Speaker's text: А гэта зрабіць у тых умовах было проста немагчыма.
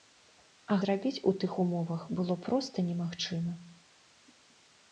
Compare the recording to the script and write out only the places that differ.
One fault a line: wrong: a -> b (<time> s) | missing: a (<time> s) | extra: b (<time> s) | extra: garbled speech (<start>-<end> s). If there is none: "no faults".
missing: гэта (0.8 s)